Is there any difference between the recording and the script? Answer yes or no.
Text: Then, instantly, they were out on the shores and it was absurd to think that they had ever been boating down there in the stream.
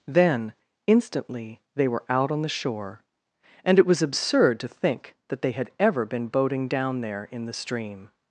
yes